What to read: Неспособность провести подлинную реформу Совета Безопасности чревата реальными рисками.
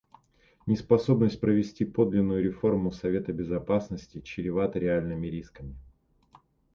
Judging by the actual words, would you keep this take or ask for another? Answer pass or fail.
pass